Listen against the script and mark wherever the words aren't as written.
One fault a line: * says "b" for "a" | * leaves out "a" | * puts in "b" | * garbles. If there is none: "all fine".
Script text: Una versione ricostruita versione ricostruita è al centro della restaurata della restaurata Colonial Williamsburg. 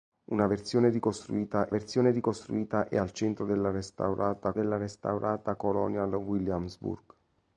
all fine